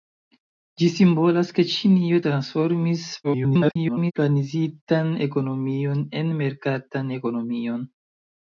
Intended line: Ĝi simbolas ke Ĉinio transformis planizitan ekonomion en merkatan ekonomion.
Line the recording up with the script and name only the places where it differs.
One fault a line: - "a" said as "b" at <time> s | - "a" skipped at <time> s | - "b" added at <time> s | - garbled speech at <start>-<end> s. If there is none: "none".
- garbled speech at 3.2-4.1 s